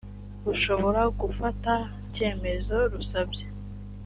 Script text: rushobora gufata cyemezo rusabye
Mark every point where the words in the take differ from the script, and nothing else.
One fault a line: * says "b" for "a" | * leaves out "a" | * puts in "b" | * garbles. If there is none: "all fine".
all fine